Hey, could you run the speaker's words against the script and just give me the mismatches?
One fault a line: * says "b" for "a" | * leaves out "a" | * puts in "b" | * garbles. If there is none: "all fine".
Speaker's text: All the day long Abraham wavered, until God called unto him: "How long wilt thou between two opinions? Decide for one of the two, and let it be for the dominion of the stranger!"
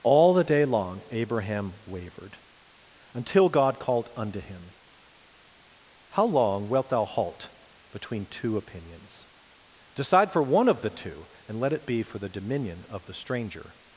* puts in "halt"